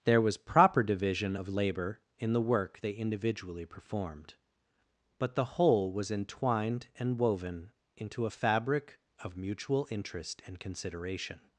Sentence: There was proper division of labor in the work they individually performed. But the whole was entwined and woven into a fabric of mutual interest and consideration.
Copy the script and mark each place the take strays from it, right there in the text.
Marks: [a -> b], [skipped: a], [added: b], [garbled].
There was proper division of labor in the work they individually performed. But the whole was entwined and woven into a fabric of mutual interest and consideration.